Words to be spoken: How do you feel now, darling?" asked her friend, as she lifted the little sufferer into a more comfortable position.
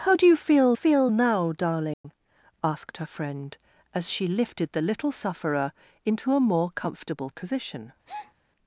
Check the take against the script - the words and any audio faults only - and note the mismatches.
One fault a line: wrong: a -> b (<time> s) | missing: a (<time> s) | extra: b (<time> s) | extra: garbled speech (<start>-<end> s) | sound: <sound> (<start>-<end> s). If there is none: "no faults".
extra: feel (0.7 s)
sound: dropout (1.9-2.0 s)
sound: breath (8.1-8.3 s)